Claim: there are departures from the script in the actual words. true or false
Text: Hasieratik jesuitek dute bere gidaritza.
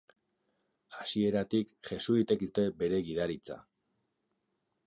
false